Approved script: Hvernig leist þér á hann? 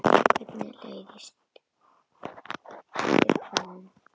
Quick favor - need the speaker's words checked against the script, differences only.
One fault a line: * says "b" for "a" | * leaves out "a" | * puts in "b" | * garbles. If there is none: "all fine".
all fine